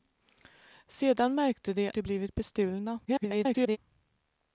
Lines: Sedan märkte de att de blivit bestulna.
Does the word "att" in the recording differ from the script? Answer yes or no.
yes